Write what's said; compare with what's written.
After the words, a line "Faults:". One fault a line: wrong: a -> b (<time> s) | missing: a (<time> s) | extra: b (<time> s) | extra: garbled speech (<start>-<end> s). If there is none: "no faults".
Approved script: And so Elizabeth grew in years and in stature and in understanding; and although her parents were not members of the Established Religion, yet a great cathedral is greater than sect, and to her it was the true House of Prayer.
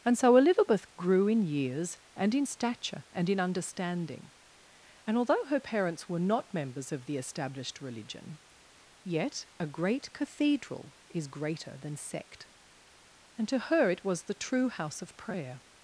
And so Elizabeth grew in years and in stature and in understanding; and although her parents were not members of the Established Religion, yet a great cathedral is greater than sect, and to her it was the true House of Prayer.
Faults:
no faults